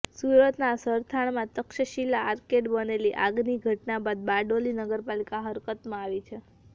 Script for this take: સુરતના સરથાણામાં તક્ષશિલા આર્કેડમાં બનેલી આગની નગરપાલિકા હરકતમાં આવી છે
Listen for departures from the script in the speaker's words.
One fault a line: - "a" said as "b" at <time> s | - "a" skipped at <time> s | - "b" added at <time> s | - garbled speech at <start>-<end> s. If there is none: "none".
- "ઘટના બાદ બારડોલી" added at 3.6 s